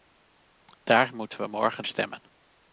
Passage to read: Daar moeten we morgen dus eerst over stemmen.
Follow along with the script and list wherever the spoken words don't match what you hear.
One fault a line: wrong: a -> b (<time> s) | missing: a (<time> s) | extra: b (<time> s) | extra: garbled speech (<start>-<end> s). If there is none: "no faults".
missing: dus eerst over (1.8 s)